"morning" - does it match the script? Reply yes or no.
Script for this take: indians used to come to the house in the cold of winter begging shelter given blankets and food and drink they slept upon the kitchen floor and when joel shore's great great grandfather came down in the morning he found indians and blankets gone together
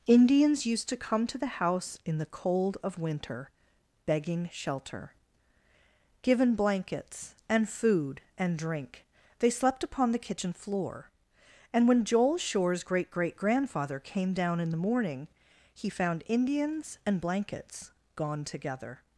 yes